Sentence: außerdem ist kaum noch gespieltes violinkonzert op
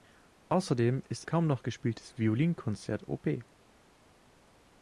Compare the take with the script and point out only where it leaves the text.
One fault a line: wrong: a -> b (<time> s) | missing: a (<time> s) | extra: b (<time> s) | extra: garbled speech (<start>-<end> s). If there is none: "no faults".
no faults